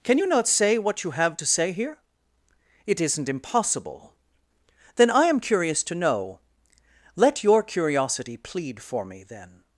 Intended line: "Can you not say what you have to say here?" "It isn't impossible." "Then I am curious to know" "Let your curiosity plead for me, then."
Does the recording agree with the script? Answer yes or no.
yes